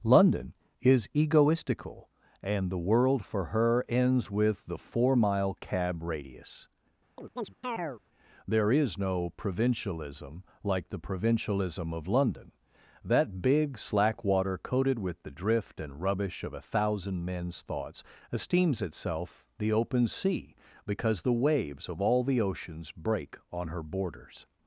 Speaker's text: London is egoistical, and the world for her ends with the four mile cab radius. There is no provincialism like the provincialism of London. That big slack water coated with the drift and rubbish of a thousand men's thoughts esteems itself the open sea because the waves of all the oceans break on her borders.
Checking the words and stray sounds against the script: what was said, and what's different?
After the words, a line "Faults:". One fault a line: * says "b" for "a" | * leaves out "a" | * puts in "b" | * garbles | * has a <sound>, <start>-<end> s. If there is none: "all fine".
London is egoistical, and the world for her ends with the four mile cab radius. There is no provincialism like the provincialism of London. That big slack water coated with the drift and rubbish of a thousand men's thoughts esteems itself the open sea because the waves of all the oceans break on her borders.
Faults:
* has a chirp, 7.2-8.0 s